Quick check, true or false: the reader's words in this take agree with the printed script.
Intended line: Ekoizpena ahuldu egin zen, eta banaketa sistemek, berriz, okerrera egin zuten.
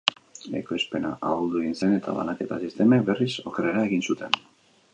true